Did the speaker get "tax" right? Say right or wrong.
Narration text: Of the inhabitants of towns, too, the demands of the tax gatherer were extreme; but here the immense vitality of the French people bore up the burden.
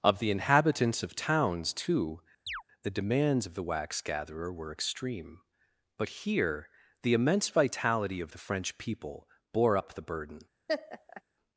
wrong